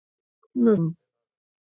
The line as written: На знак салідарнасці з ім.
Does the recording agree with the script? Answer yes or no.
no